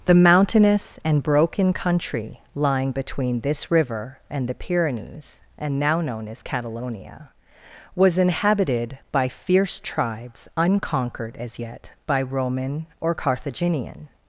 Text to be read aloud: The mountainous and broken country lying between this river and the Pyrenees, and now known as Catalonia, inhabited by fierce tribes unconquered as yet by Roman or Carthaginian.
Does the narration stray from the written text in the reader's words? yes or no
yes